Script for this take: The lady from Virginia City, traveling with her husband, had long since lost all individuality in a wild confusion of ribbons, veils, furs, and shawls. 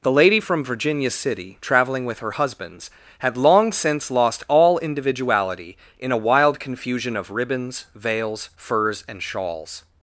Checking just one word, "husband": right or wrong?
wrong